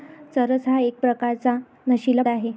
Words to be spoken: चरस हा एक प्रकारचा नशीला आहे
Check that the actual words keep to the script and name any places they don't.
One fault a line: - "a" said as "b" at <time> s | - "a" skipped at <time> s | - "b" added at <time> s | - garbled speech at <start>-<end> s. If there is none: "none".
none